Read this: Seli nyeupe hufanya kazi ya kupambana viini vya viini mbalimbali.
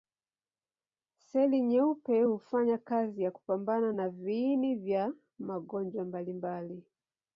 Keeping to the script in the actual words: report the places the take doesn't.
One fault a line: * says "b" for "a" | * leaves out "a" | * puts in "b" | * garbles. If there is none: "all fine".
* puts in "na"
* says "magonjwa" for "viini"